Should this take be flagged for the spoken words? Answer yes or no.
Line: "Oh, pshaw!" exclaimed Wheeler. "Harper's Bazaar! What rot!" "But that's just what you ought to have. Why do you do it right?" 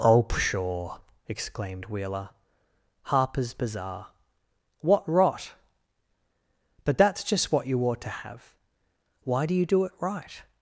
no